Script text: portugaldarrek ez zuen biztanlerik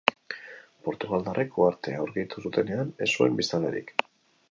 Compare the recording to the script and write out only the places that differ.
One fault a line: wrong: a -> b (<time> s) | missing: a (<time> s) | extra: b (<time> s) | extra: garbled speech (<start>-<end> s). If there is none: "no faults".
extra: uhartea aurkitu zutenean (1.6 s)